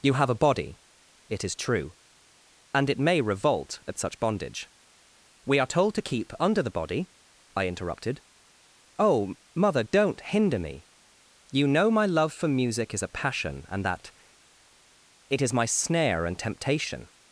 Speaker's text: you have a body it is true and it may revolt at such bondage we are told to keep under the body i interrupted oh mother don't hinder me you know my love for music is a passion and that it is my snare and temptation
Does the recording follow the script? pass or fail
pass